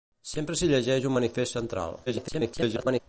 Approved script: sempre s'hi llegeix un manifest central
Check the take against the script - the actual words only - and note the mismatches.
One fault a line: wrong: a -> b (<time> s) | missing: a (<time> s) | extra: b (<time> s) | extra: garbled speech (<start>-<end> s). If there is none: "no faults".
extra: garbled speech (2.1-3.0 s)